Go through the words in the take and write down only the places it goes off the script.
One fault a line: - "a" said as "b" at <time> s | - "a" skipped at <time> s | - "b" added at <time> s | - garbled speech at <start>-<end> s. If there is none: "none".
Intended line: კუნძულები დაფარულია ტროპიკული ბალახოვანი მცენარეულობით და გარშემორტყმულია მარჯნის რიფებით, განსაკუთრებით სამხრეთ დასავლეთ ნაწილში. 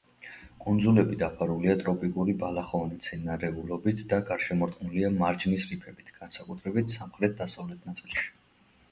none